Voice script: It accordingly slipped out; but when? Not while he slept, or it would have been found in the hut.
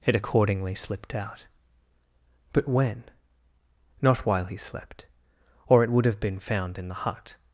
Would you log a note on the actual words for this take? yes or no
no